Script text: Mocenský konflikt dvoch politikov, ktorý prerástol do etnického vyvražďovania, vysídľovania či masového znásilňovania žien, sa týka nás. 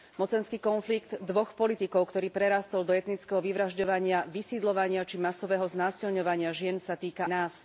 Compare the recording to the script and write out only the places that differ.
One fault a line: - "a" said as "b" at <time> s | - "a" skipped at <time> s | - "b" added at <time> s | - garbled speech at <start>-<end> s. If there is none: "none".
none